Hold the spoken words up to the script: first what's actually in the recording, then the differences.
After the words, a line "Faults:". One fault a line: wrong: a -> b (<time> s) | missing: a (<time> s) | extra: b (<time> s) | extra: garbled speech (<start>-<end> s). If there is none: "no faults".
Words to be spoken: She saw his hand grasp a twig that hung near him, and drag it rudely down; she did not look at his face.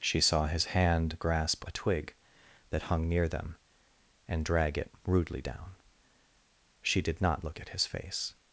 She saw his hand grasp a twig that hung near them, and drag it rudely down; she did not look at his face.
Faults:
wrong: him -> them (3.3 s)